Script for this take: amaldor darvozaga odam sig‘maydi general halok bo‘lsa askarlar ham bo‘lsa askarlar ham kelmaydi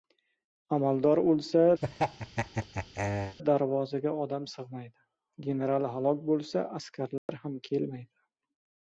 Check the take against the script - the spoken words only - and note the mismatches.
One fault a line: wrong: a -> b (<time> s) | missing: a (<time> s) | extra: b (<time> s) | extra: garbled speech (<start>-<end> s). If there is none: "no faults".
extra: o‘lsa (1.3 s)
missing: bo‘lsa askarlar ham (7.6 s)